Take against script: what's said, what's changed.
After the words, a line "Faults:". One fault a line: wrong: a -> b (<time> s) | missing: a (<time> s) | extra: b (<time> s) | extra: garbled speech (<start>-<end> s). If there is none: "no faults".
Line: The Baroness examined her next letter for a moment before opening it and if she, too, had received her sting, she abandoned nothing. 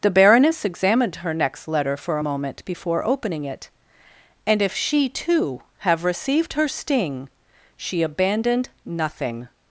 The Baroness examined her next letter for a moment before opening it and if she, too, have received her sting, she abandoned nothing.
Faults:
wrong: had -> have (5.8 s)